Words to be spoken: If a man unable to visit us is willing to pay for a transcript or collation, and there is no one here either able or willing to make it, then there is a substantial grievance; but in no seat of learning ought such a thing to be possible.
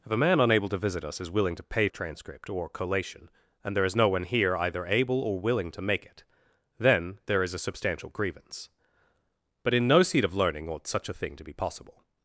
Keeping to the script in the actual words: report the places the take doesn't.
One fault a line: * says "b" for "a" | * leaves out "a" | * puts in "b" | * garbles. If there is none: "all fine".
* leaves out "for"